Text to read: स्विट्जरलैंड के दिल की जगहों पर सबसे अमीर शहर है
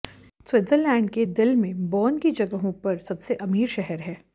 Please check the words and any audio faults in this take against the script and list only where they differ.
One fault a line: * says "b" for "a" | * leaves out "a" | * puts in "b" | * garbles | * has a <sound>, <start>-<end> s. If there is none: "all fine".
* puts in "में बर्न"